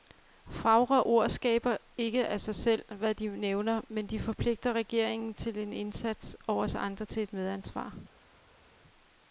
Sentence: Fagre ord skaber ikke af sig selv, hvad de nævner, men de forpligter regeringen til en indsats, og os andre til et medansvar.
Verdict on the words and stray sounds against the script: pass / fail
pass